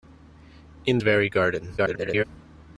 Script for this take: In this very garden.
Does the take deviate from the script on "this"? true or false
true